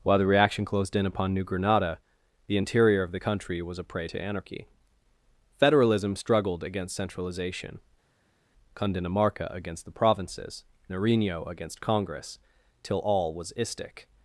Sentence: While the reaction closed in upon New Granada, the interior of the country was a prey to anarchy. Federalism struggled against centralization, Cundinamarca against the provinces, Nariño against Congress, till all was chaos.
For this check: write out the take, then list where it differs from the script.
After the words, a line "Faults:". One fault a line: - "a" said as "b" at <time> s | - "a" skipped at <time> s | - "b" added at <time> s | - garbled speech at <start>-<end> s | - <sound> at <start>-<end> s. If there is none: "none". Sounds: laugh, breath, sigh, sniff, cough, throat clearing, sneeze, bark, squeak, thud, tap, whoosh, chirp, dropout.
While the reaction closed in upon New Granada, the interior of the country was a prey to anarchy. Federalism struggled against centralization, Cundinamarca against the provinces, Nariño against Congress, till all was istic.
Faults:
- "chaos" said as "istic" at 13.6 s